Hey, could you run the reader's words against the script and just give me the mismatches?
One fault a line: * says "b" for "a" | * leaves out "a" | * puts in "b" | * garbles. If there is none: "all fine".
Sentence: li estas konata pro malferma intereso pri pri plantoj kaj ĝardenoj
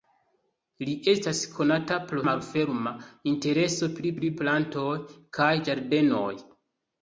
all fine